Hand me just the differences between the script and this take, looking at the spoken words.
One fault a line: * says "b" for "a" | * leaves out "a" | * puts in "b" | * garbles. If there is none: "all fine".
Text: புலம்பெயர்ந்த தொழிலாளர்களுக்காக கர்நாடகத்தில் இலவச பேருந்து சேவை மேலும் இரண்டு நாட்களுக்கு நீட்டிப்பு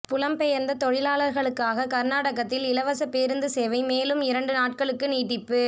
all fine